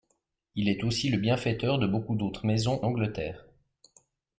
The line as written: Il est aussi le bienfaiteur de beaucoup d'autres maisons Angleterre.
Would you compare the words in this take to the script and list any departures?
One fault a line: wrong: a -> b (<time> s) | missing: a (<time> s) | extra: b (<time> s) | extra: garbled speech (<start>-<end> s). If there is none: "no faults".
no faults